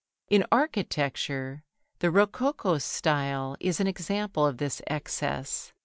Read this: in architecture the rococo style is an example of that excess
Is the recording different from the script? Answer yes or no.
yes